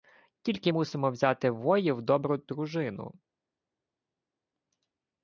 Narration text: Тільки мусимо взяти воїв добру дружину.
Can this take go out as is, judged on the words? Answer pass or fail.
pass